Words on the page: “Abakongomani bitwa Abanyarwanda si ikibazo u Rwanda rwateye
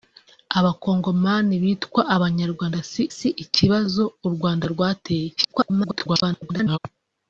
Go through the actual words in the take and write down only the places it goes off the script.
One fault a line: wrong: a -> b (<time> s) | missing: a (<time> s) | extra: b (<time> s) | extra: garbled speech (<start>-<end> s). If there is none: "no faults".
extra: si (3.2 s)
extra: garbled speech (5.4-6.8 s)